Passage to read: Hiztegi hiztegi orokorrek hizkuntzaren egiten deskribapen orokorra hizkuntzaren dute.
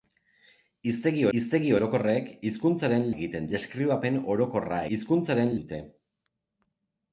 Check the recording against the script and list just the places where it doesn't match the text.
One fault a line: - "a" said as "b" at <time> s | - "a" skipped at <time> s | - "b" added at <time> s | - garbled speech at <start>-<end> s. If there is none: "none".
none